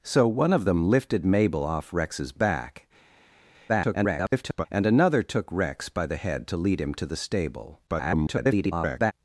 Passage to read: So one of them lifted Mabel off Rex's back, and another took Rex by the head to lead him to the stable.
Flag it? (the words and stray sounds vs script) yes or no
yes